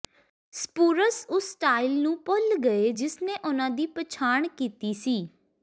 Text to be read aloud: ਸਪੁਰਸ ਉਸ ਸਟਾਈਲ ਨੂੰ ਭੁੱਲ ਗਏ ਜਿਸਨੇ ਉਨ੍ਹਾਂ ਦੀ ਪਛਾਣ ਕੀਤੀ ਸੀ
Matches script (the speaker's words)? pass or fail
pass